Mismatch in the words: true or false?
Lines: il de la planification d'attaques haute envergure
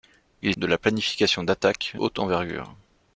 false